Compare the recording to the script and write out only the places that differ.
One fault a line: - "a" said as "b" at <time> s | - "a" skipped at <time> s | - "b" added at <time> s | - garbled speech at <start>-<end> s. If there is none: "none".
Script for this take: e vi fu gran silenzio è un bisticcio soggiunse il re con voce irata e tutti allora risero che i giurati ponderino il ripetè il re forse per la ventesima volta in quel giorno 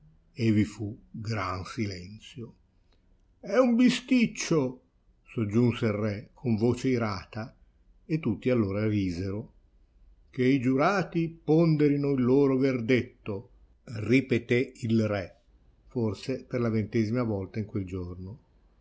- "loro verdetto" added at 12.2 s